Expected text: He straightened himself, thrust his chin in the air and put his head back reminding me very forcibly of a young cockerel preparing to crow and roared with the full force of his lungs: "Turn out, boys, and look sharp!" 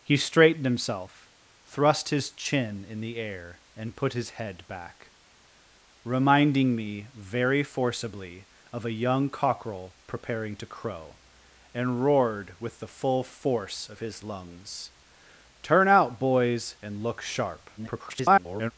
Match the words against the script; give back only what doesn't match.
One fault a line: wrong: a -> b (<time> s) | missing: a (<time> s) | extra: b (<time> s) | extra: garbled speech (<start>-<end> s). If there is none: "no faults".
extra: garbled speech (17.8-18.7 s)